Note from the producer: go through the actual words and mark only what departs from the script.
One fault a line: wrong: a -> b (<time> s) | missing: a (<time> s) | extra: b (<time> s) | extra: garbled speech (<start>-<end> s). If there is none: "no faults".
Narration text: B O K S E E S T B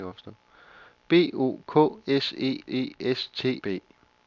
no faults